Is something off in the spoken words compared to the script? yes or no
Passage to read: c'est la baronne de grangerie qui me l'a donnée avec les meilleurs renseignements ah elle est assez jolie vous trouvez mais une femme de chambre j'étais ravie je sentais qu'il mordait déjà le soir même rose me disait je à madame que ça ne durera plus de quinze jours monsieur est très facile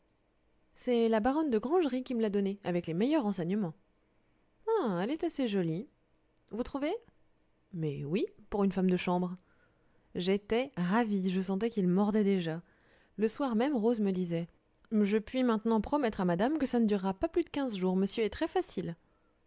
yes